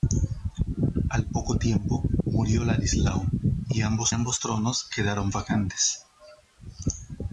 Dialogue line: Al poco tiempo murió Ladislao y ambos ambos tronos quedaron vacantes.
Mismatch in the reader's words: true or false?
false